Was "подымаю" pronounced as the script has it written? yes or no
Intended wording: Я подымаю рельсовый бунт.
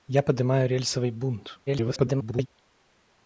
yes